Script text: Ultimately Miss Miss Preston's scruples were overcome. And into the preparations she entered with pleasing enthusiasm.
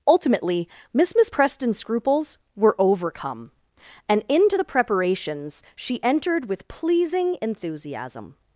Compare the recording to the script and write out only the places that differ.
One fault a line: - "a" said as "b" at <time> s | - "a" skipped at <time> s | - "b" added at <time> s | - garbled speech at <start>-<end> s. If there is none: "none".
none